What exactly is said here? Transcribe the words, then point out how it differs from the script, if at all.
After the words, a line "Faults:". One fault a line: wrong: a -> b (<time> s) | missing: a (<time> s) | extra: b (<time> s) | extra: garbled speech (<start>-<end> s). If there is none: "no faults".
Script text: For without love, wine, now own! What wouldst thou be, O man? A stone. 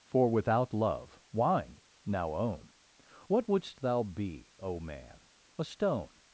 For without love, wine, now own! What wouldst thou be, O man? A stone.
Faults:
no faults